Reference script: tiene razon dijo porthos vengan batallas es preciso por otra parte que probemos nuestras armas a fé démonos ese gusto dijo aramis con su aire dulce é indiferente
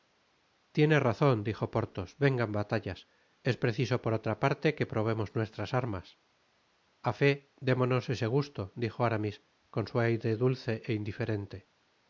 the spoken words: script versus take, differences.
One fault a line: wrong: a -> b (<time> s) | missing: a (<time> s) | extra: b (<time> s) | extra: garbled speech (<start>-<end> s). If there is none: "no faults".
no faults